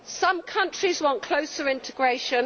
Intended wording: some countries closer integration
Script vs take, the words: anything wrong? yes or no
yes